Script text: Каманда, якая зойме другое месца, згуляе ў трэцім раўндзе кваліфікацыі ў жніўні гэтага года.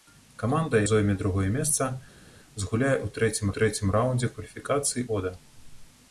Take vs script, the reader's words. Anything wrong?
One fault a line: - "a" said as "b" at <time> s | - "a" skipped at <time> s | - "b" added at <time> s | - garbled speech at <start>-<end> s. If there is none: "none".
- "якая" skipped at 0.8 s
- "трэцім" added at 3.6 s
- "ў жніўні гэтага" skipped at 5.1 s